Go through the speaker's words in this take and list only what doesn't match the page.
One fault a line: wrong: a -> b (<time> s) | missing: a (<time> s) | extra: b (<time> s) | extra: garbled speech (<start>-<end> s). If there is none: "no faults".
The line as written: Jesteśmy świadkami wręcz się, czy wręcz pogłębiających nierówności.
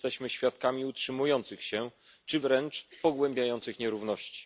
wrong: wręcz -> utrzymujących (0.8 s)